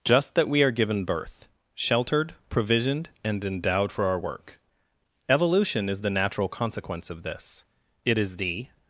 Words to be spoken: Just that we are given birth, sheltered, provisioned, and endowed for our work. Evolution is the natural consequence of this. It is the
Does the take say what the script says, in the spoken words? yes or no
yes